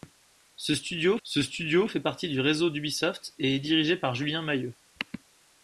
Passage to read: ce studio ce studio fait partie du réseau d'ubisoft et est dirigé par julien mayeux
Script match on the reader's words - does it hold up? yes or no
yes